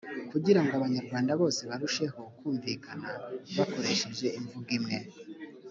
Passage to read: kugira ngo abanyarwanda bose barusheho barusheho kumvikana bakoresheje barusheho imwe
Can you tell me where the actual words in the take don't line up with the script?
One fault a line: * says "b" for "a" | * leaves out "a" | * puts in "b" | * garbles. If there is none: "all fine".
* leaves out "barusheho"
* says "imvugo" for "barusheho"